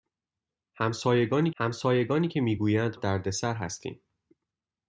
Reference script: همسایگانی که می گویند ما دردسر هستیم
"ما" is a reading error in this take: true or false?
true